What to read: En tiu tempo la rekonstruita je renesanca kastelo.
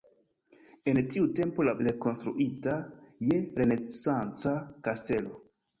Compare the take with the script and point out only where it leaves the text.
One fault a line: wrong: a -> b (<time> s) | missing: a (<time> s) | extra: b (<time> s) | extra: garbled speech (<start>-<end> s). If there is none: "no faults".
no faults